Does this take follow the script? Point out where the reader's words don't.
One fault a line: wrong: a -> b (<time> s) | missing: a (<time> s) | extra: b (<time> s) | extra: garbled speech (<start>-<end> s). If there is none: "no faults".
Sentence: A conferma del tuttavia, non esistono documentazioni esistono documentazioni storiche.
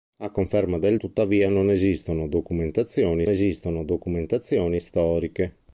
no faults